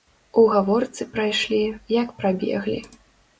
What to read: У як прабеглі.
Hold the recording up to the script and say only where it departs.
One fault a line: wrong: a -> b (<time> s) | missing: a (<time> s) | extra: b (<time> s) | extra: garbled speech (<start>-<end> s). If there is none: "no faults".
extra: гаворцы прайшлі (0.5 s)